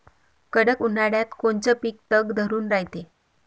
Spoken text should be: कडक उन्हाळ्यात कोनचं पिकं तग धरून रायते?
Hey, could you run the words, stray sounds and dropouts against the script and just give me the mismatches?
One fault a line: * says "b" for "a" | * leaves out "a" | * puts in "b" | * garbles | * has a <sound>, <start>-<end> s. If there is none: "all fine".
all fine